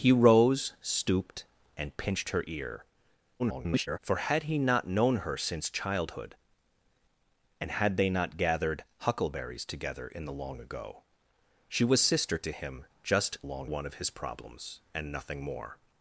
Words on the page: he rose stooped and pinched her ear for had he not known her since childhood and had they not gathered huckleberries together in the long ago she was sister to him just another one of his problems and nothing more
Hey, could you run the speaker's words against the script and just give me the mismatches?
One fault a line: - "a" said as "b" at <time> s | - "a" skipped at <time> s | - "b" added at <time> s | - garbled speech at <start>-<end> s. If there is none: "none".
- garbled speech at 3.4-4.0 s
- "another" said as "long" at 13.4 s